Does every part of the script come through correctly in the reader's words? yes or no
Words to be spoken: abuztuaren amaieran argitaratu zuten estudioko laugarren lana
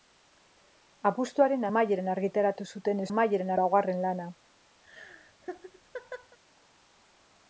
no